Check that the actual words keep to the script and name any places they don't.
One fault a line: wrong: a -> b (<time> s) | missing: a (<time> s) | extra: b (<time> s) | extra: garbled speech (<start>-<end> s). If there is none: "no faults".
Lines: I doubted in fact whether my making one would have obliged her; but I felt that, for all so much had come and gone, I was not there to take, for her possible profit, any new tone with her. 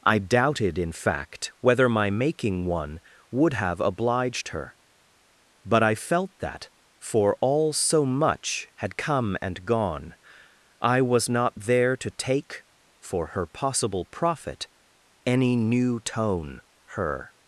missing: with (16.6 s)